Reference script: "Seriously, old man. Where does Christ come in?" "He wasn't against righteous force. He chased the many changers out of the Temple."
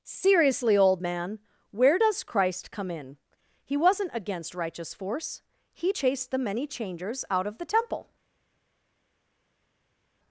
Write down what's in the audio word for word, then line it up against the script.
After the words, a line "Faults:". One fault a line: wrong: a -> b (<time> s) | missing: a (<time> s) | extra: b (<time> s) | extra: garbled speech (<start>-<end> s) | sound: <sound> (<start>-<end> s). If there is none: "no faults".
"Seriously, old man. Where does Christ come in?" "He wasn't against righteous force. He chased the many changers out of the Temple."
Faults:
no faults